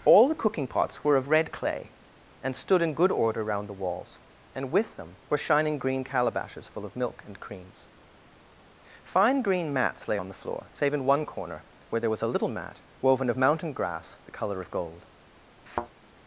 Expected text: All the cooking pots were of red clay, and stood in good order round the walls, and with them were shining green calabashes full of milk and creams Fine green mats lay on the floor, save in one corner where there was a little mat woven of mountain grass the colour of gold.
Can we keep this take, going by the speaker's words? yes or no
yes